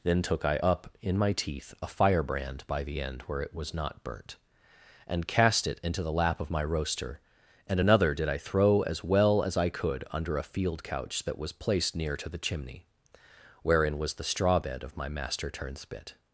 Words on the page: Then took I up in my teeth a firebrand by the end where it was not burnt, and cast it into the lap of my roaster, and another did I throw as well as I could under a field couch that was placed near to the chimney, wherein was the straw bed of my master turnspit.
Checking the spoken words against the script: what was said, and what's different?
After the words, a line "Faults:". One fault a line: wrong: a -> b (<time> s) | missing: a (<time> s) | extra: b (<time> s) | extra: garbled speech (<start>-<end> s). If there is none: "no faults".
Then took I up in my teeth a firebrand by the end where it was not burnt, and cast it into the lap of my roaster, and another did I throw as well as I could under a field couch that was placed near to the chimney, wherein was the straw bed of my master turnspit.
Faults:
no faults